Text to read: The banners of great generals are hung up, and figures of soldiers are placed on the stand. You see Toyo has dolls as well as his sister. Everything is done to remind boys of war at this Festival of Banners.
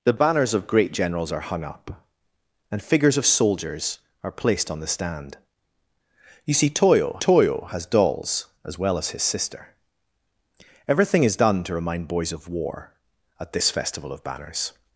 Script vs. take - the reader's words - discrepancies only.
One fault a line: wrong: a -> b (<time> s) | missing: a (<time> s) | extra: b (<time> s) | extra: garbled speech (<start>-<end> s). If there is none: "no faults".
extra: Toyo (7.2 s)